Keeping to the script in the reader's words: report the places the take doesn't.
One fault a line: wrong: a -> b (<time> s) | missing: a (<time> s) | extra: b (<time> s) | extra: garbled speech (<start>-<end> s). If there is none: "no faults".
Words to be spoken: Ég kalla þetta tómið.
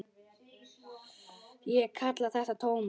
no faults